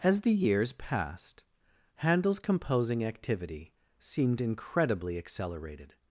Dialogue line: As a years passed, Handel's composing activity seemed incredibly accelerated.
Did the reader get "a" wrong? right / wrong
wrong